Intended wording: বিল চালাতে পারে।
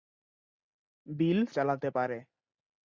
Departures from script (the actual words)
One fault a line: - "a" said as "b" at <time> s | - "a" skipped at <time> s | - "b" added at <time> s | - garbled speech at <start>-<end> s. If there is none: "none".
none